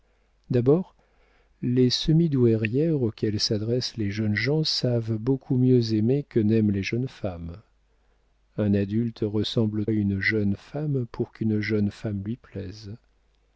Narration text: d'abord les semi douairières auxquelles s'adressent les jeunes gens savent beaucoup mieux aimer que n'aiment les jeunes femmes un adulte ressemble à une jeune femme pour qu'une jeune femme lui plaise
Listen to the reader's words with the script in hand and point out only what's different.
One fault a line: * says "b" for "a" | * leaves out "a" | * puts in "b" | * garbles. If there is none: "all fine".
all fine